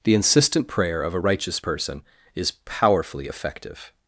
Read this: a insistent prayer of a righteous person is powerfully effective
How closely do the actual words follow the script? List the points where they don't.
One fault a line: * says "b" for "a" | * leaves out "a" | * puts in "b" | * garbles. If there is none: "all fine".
* says "the" for "a"